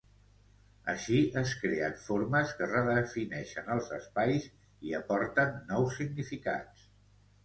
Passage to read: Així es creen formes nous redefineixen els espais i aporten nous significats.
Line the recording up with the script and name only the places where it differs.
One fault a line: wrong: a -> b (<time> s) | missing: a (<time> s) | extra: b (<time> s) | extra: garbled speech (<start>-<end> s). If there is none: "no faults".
wrong: nous -> que (2.6 s)